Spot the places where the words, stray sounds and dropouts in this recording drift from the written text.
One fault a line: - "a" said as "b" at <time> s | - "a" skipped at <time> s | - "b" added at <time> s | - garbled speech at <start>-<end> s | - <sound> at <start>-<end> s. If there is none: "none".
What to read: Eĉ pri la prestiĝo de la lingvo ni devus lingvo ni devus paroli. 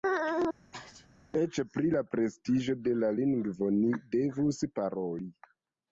- sneeze at 0.7-1.1 s
- "lingvo ni devus" skipped at 4.7 s